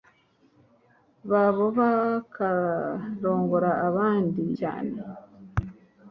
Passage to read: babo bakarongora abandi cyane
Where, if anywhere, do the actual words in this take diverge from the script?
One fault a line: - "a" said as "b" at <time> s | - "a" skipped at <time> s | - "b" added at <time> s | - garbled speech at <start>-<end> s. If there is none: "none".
none